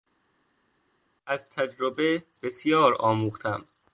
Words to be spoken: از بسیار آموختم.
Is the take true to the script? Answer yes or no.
no